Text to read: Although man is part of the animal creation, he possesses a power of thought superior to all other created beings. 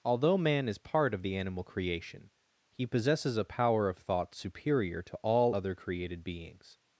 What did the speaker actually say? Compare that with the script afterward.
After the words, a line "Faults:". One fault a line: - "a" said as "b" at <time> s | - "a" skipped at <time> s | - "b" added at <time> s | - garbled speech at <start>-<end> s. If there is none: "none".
Although man is part of the animal creation, he possesses a power of thought superior to all other created beings.
Faults:
none